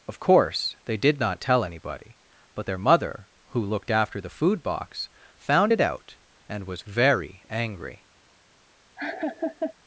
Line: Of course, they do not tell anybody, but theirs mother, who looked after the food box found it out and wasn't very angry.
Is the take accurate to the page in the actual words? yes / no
no